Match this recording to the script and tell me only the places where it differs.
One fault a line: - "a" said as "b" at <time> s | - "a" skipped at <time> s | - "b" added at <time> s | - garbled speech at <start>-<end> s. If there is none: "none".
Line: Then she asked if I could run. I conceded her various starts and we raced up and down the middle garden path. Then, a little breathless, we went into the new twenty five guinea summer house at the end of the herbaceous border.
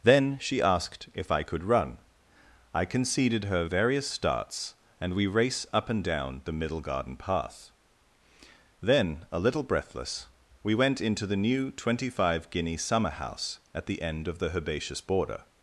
- "raced" said as "race" at 5.3 s